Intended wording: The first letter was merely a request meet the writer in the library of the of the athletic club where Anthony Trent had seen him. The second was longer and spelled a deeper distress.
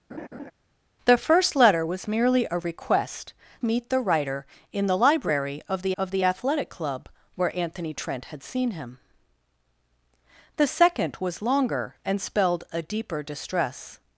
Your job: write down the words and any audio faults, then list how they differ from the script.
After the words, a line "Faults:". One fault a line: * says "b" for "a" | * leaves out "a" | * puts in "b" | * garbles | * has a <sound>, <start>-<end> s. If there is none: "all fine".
The first letter was merely a request meet the writer in the library of the of the athletic club where Anthony Trent had seen him. The second was longer and spelled a deeper distress.
Faults:
* has a laugh, 0.1-0.5 s